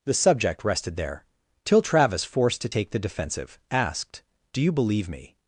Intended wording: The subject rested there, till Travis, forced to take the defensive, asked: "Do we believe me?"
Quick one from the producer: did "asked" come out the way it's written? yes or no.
yes